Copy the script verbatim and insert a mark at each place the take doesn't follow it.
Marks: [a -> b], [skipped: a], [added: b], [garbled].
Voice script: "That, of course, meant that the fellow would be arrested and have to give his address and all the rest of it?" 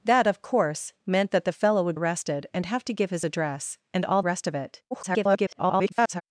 "That, of course, meant that the fellow would [skipped: be] arrested and have to give his address and all [skipped: the] rest of it?" [garbled]